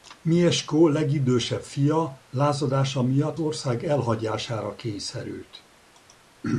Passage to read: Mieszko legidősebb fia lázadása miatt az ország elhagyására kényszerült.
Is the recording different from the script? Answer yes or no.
yes